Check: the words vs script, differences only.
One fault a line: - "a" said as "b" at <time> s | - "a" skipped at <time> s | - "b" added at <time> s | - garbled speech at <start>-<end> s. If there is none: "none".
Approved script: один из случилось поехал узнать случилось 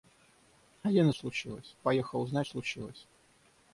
none